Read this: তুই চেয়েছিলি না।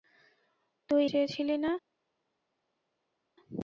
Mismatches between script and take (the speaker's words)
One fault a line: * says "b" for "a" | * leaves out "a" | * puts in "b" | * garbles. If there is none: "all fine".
all fine